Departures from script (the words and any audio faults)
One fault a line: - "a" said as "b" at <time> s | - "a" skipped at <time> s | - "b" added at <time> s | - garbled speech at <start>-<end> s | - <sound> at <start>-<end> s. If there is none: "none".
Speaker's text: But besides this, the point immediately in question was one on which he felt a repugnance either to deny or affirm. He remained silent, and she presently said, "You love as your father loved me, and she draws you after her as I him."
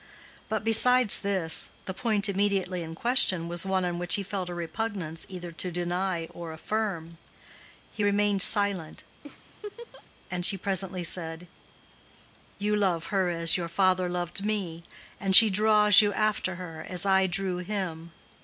- laugh at 9.2-10.0 s
- "her" added at 13.1 s
- "drew" added at 17.3 s